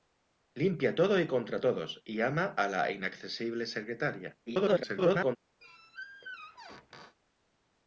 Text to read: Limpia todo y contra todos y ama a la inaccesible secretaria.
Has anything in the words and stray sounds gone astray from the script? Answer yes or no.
yes